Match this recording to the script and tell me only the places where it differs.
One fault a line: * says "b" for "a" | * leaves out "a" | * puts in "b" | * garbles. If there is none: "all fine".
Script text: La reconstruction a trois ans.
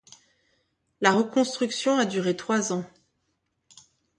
* puts in "duré"